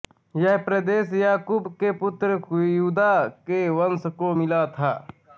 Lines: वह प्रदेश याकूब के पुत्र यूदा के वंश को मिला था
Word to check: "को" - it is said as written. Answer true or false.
true